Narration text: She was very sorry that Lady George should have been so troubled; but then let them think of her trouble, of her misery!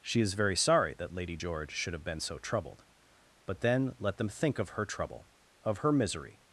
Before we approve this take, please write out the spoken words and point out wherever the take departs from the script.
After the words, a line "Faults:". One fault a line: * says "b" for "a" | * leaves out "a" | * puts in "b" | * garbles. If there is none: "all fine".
She is very sorry that Lady George should have been so troubled; but then let them think of her trouble, of her misery!
Faults:
* says "is" for "was"